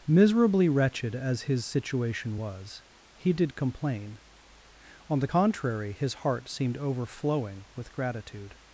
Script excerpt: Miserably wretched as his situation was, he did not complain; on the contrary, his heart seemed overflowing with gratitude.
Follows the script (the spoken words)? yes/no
no